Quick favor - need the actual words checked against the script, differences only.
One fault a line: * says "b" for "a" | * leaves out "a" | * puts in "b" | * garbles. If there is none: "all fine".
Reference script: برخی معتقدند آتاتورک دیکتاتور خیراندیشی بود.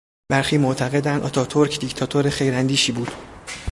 all fine